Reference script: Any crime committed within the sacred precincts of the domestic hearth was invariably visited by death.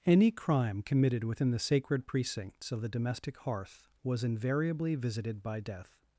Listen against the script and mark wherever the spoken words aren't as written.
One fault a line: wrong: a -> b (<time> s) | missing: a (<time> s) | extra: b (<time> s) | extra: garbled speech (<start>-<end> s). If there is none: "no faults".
no faults